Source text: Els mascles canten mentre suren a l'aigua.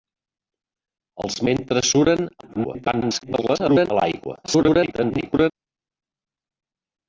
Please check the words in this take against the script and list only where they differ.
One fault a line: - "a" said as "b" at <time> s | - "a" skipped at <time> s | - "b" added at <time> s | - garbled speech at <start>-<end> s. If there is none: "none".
- "mascles canten" skipped at 1.4 s
- garbled speech at 2.4-3.9 s
- garbled speech at 4.4-5.5 s